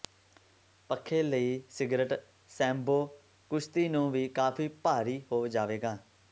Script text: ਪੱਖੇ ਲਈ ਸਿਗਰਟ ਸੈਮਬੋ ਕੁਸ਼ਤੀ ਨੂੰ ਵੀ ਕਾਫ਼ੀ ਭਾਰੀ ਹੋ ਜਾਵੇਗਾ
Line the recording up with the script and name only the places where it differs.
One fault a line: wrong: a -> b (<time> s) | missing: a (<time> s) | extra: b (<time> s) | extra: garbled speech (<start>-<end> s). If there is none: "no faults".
no faults